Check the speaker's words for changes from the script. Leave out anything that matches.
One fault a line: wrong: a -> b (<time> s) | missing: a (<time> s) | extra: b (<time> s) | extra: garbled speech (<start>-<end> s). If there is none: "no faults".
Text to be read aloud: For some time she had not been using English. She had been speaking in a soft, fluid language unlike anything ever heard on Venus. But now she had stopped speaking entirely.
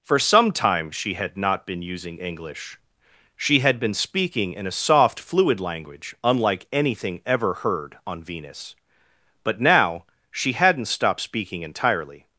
wrong: had -> hadn't (10.5 s)